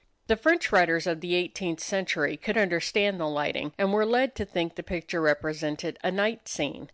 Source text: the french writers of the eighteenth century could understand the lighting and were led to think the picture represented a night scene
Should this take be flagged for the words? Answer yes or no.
no